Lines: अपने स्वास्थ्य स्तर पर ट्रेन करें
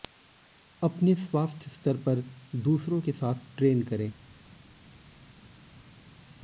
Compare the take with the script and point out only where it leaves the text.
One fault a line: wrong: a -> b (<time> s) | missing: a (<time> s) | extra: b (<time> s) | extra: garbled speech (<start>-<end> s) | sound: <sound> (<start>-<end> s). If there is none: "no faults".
extra: दूसरों के साथ (2.5 s)